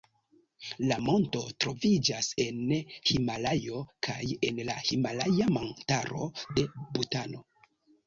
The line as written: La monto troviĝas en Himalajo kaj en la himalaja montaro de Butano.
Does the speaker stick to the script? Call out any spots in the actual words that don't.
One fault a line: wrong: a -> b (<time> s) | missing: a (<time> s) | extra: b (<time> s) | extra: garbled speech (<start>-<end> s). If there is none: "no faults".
no faults